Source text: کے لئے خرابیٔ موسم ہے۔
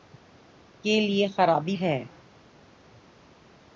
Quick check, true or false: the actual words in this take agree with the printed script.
false